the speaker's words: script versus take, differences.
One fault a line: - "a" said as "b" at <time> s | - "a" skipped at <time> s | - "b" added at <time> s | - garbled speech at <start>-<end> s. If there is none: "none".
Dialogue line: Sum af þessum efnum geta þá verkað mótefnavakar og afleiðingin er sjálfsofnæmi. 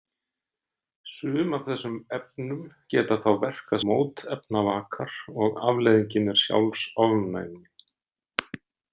none